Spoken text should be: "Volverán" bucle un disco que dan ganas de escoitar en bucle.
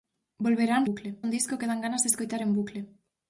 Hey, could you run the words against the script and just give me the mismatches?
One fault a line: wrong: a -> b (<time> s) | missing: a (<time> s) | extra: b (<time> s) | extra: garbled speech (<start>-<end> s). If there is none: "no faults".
no faults